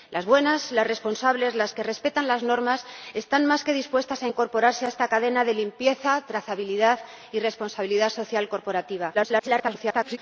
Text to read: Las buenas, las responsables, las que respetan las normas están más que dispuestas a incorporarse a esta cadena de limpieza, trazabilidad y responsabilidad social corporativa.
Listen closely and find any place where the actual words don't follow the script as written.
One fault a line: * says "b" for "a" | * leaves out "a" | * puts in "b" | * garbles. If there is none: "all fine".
* garbles